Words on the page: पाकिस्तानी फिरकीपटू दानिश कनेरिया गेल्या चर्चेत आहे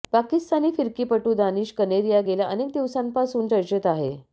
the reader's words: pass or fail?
fail